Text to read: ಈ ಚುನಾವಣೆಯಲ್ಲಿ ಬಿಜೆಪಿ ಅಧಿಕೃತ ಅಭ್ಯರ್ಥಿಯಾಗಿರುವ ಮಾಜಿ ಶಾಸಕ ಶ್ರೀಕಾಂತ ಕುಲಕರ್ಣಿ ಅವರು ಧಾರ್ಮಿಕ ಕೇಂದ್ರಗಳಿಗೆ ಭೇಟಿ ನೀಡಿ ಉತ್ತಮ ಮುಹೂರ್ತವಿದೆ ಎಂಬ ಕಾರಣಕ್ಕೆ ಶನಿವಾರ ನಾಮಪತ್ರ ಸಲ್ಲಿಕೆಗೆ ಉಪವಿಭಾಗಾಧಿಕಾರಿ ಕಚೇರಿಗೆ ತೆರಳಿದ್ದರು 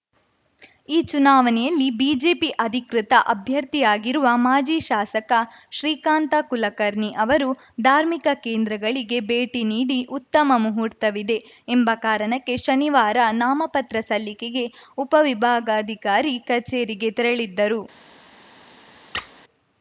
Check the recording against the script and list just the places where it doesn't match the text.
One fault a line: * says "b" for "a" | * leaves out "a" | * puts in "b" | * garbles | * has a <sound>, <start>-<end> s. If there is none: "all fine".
* has a squeak, 19.1-19.3 s